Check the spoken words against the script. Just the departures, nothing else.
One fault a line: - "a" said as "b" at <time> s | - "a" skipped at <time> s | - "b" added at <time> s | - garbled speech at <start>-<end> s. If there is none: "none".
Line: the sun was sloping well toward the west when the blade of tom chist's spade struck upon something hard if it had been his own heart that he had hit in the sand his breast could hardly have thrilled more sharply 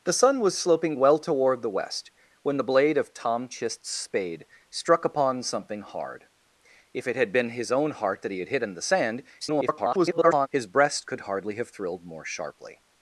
- garbled speech at 9.4-10.5 s